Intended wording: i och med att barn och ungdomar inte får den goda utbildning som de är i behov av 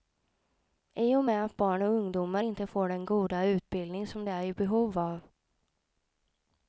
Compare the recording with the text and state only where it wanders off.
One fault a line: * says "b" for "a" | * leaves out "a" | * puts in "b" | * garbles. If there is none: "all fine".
all fine